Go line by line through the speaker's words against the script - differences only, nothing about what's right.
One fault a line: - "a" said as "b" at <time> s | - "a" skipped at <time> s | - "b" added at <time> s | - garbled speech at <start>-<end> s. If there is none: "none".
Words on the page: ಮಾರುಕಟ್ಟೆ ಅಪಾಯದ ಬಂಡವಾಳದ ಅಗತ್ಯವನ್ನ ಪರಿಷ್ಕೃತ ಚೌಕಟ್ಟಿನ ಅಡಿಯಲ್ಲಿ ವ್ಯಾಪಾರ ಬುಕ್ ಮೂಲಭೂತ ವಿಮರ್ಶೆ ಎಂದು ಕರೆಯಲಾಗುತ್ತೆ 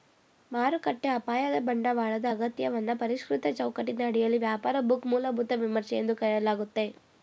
none